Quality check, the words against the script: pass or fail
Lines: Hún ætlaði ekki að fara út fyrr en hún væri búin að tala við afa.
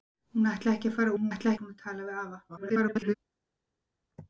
fail